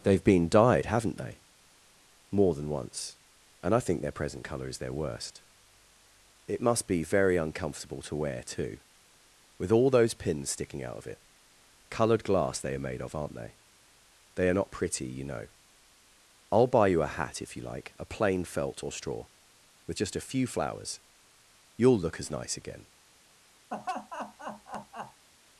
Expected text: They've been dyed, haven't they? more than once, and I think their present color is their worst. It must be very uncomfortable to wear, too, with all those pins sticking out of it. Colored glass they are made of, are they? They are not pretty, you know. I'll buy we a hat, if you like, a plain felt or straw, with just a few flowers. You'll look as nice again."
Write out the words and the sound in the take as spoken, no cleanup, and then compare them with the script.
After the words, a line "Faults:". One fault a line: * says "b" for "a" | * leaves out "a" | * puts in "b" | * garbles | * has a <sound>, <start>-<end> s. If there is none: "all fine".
They've been dyed, haven't they? more than once, and I think their present color is their worst. It must be very uncomfortable to wear, too, with all those pins sticking out of it. Colored glass they are made of, aren't they? They are not pretty, you know. I'll buy you a hat, if you like, a plain felt or straw, with just a few flowers. You'll look as nice again."
Faults:
* says "aren't" for "are"
* says "you" for "we"
* has a laugh, 23.7-25.3 s